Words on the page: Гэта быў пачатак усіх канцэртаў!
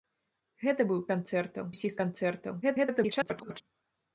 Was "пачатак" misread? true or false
true